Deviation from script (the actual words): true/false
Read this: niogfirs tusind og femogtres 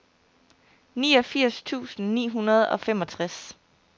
true